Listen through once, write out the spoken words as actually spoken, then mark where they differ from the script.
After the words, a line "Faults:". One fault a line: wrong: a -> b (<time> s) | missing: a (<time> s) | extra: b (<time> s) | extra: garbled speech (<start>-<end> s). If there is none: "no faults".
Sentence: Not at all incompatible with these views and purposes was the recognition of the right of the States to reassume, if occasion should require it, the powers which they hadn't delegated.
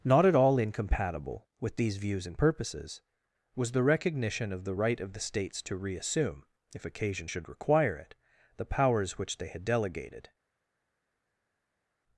Not at all incompatible with these views and purposes was the recognition of the right of the States to reassume, if occasion should require it, the powers which they had delegated.
Faults:
wrong: hadn't -> had (9.5 s)